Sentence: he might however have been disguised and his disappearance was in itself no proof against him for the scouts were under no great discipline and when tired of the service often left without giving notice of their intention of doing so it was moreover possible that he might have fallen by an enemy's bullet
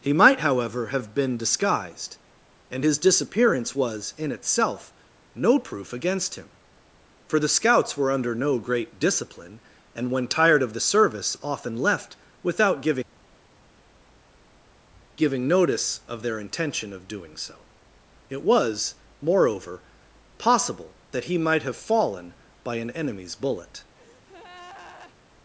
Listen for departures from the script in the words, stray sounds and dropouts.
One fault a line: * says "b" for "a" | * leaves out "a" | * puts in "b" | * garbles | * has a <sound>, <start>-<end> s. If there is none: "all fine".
* puts in "giving"
* has a breath, 24.0-25.2 s